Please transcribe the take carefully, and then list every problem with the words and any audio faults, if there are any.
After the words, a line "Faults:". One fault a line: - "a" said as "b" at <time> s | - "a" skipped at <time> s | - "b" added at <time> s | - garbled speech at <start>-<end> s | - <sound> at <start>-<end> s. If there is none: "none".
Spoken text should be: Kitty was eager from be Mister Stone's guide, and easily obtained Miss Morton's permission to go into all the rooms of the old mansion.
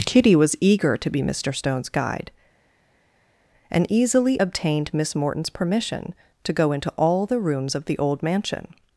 Kitty was eager to be Mister Stone's guide, and easily obtained Miss Morton's permission to go into all the rooms of the old mansion.
Faults:
- "from" said as "to" at 1.0 s